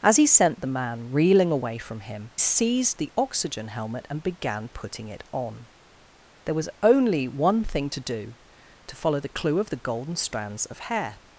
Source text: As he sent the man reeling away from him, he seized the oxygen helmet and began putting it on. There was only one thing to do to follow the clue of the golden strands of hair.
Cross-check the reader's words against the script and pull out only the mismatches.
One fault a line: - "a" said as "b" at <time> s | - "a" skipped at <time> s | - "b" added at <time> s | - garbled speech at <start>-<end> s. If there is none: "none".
- "he" skipped at 2.3 s